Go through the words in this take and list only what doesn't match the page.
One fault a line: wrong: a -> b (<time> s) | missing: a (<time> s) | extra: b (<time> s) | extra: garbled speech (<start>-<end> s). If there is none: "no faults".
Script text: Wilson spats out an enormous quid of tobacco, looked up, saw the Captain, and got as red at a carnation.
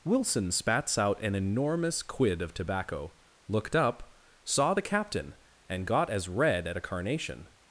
no faults